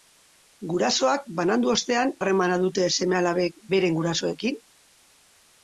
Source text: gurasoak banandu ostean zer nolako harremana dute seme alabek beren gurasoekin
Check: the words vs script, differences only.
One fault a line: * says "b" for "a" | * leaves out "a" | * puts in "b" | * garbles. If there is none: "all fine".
* leaves out "zer nolako"